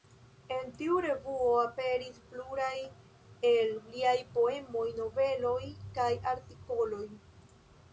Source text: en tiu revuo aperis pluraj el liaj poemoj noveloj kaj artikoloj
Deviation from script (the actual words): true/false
false